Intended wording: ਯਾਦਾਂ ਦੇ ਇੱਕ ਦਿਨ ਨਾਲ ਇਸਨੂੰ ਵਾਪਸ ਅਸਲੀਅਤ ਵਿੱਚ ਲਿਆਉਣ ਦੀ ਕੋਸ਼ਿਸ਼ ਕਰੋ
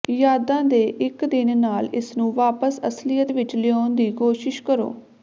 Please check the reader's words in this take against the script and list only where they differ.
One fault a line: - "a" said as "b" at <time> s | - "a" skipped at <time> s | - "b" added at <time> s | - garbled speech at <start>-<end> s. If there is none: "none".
none